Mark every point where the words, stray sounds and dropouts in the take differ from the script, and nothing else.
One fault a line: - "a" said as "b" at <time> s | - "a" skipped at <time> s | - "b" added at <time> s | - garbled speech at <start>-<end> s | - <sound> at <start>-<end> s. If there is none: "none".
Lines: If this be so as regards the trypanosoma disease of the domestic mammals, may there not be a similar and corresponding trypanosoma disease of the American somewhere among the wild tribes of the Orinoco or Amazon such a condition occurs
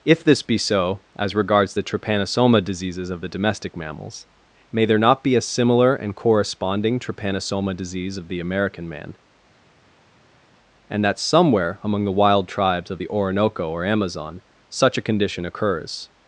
- "disease" said as "diseases" at 2.6 s
- "man and that" added at 8.9 s